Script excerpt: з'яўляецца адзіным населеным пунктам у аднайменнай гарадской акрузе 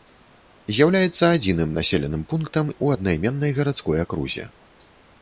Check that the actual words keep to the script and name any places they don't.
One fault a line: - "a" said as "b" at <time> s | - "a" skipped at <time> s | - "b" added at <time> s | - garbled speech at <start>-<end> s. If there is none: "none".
none